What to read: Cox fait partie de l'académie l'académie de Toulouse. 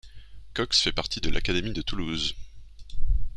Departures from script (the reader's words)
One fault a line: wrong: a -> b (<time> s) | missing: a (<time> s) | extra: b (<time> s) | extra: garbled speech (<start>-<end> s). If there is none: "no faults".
missing: l'académie (1.7 s)